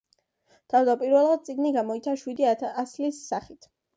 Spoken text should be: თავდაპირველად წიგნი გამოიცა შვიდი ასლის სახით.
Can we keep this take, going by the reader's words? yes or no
yes